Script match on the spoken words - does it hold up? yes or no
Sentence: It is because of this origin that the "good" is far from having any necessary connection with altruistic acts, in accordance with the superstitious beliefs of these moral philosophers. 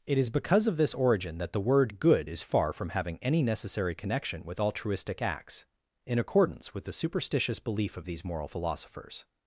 no